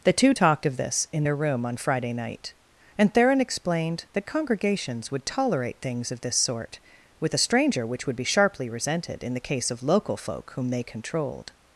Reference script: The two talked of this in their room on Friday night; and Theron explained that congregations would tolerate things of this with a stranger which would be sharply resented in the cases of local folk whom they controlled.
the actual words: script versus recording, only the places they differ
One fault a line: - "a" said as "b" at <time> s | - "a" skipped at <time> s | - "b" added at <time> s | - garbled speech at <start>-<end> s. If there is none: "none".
- "sort" added at 6.4 s
- "cases" said as "case" at 9.4 s